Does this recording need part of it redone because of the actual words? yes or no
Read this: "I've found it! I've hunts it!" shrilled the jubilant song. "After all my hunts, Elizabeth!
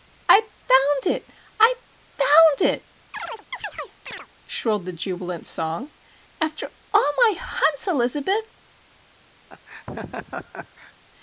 yes